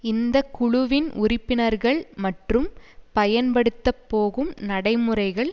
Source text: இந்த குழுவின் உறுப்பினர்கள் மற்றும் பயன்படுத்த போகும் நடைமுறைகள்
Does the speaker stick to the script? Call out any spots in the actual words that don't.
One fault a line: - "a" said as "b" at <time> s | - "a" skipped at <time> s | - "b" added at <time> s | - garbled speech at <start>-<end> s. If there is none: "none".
none